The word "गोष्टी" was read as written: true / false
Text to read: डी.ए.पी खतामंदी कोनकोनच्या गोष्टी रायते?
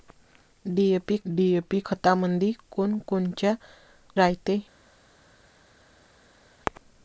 false